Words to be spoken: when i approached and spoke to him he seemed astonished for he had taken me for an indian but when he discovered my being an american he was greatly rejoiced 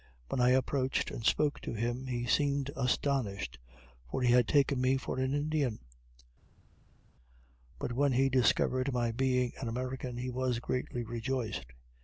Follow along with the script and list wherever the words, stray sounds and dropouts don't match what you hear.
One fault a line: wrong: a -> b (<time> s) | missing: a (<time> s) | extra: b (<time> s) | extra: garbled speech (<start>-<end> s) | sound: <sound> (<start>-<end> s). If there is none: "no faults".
no faults